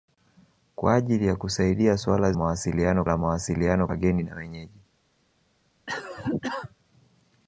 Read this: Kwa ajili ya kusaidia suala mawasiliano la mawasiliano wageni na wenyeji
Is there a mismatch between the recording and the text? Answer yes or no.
no